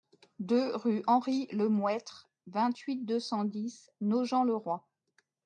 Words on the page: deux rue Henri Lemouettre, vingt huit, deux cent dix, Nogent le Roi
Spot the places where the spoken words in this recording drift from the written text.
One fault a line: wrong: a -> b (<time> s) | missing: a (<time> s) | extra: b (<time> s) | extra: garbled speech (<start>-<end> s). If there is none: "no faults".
no faults